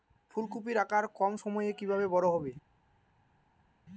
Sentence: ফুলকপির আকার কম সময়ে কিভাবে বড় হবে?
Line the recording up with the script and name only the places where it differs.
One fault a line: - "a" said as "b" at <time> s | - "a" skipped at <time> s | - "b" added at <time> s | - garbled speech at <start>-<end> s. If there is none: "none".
none